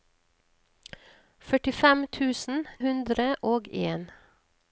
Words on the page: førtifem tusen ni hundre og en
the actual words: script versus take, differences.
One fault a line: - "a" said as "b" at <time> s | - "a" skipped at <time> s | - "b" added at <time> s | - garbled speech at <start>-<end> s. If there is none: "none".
- "ni" skipped at 2.6 s